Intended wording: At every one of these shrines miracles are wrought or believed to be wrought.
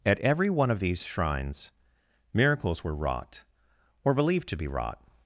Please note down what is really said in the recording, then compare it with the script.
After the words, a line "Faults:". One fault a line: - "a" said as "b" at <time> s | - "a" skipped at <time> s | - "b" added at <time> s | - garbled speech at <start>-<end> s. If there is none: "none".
At every one of these shrines miracles were wrought or believed to be wrought.
Faults:
- "are" said as "were" at 2.8 s